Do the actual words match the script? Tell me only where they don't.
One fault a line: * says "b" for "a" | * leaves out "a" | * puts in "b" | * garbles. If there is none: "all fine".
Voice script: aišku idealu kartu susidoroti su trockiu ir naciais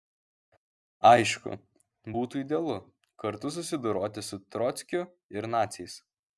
* puts in "būtų"